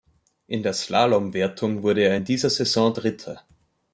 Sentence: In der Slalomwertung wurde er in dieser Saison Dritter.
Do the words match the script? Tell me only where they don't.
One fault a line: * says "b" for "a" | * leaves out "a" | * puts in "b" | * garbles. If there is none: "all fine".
all fine